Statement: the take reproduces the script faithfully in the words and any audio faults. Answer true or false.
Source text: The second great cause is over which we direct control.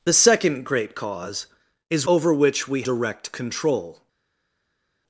true